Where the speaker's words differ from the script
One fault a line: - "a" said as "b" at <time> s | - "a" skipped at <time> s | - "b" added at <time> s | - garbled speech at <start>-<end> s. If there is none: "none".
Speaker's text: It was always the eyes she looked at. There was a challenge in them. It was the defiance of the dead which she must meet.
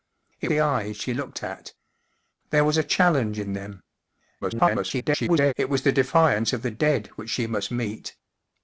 - "was always" skipped at 0.5 s
- garbled speech at 4.4-5.5 s